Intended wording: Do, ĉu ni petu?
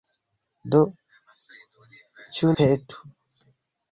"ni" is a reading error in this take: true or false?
true